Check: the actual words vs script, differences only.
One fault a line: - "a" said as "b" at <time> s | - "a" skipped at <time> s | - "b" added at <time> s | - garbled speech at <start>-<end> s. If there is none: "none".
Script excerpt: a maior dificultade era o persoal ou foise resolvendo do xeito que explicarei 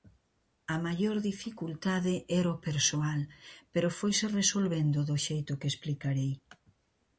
- "ou" said as "pero" at 3.7 s